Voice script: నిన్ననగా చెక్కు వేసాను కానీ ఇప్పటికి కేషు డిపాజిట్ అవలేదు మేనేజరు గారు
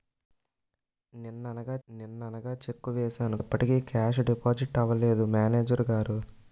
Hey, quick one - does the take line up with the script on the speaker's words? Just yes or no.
no